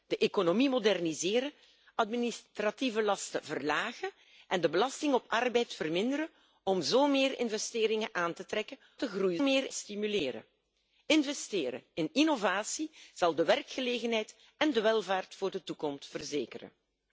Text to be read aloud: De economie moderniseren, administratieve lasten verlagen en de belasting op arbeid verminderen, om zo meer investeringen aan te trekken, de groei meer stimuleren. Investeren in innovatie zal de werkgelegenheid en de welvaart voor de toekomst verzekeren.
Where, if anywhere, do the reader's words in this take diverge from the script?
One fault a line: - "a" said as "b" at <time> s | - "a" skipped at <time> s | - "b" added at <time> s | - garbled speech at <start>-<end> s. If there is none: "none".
none